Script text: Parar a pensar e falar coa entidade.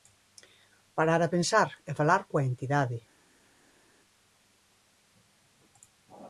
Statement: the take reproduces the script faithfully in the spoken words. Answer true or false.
true